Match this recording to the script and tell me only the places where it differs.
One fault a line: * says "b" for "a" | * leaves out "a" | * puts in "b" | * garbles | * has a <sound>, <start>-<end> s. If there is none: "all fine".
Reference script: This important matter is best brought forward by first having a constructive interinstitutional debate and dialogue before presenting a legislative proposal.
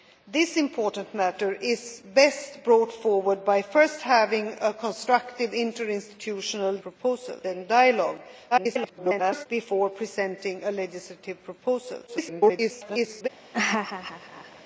* says "proposal" for "debate"
* garbles
* garbles
* has a laugh, 13.5-14.6 s